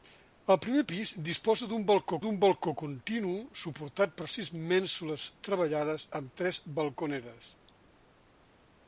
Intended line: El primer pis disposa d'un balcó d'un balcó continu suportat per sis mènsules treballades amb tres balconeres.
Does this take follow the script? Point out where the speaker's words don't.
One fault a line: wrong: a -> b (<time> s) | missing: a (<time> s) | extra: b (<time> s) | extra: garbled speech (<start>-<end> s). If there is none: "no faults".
no faults